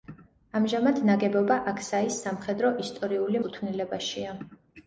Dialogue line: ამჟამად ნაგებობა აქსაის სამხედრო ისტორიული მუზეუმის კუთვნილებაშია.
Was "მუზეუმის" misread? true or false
true